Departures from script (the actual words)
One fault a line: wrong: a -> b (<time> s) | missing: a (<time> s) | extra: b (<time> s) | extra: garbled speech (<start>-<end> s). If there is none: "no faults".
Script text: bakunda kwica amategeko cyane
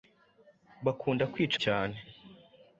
missing: amategeko (1.6 s)